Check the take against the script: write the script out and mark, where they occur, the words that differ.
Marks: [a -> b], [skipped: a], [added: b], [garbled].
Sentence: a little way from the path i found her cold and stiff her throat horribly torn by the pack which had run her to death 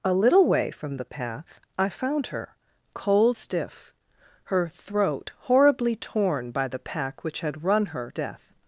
a little way from the path i found her cold [skipped: and] stiff her throat horribly torn by the pack which had run her [skipped: to] death